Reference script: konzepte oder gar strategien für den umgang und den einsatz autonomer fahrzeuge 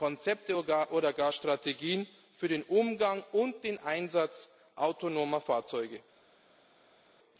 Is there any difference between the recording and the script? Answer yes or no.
no